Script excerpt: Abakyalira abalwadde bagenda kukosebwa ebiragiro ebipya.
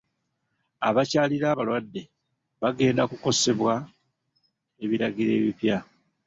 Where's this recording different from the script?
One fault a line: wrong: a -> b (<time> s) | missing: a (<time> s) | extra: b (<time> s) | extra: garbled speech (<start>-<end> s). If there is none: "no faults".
no faults